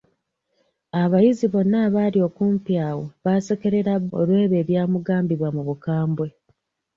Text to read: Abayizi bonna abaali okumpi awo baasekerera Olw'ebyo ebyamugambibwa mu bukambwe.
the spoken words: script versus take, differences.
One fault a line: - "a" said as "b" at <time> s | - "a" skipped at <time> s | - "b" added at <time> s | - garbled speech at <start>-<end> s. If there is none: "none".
none